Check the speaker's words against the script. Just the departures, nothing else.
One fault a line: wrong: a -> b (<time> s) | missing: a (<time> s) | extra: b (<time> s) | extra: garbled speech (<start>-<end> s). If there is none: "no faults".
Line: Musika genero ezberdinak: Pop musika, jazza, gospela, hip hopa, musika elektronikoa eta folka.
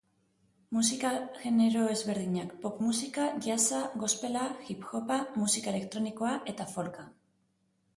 no faults